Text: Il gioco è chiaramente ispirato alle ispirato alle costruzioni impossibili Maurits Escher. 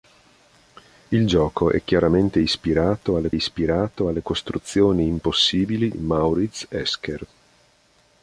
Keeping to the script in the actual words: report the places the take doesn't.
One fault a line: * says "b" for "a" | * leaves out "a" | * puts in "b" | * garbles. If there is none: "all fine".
all fine